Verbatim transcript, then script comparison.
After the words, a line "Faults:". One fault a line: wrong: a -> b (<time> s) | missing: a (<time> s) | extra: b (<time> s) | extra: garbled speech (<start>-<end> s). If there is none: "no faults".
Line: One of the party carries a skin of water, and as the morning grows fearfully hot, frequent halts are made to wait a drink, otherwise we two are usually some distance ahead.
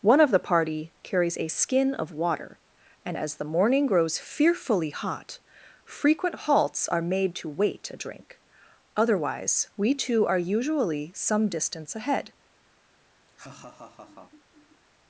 One of the party carries a skin of water, and as the morning grows fearfully hot, frequent halts are made to wait a drink, otherwise we two are usually some distance ahead.
Faults:
no faults